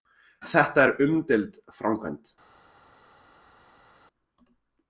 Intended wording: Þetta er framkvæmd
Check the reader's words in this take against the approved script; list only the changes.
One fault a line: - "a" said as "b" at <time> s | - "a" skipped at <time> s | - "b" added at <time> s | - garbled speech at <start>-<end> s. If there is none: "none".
- "umdeild" added at 1.1 s